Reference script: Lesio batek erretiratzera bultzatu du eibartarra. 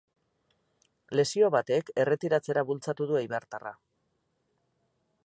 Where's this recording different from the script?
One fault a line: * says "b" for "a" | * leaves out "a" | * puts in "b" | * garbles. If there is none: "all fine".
all fine